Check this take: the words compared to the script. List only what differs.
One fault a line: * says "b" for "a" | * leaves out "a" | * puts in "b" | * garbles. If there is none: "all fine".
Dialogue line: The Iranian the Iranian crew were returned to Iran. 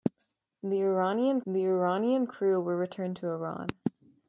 all fine